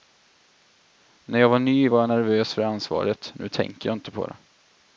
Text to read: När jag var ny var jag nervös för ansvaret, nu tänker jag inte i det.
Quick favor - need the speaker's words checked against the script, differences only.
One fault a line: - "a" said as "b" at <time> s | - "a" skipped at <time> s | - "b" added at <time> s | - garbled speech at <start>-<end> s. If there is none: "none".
- "i" said as "på" at 4.1 s